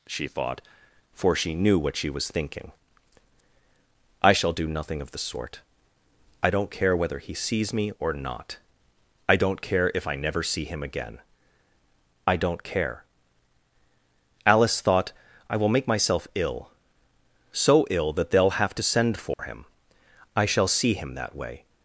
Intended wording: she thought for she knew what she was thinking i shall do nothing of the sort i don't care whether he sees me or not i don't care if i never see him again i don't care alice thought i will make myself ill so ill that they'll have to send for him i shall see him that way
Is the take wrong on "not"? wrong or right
right